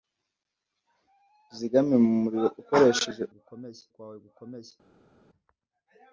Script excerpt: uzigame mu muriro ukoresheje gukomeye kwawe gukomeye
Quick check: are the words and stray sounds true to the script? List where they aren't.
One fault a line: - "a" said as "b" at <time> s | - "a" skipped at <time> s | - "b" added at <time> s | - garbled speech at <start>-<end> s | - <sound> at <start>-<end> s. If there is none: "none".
none